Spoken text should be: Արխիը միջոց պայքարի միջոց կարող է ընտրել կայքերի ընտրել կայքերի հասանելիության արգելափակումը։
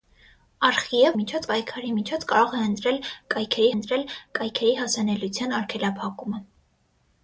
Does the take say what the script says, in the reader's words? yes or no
yes